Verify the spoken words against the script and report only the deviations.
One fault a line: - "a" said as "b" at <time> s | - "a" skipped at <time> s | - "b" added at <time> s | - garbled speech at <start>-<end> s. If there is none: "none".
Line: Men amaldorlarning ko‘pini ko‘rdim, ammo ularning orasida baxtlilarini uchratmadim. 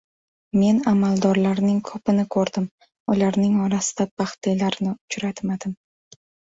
- "ammo" skipped at 2.6 s